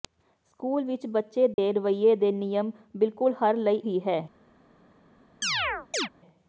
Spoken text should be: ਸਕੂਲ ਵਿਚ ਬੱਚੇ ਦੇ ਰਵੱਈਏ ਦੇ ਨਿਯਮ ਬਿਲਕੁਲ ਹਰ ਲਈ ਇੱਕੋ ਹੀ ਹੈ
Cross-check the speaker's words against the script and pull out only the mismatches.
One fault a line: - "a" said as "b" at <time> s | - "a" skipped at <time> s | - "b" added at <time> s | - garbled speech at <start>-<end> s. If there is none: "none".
- "ਇੱਕੋ" skipped at 3.8 s